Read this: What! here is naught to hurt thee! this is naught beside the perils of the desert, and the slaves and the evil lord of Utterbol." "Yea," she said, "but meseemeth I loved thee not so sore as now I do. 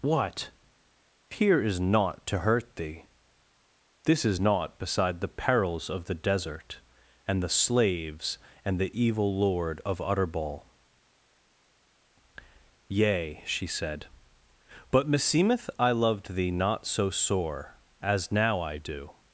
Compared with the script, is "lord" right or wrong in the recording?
right